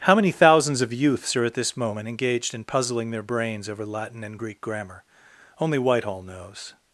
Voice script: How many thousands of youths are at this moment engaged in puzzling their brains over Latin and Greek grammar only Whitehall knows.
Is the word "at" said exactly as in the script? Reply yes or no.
yes